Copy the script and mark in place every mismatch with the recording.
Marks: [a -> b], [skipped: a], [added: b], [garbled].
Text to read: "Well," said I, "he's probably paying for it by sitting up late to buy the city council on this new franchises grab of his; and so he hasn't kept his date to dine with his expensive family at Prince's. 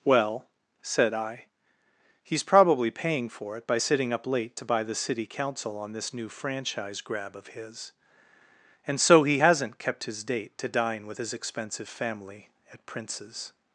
"Well," said I, "he's probably paying for it by sitting up late to buy the city council on this new [franchises -> franchise] grab of his; and so he hasn't kept his date to dine with his expensive family at Prince's.